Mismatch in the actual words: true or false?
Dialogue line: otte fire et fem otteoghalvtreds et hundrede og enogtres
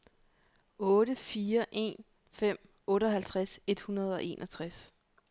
true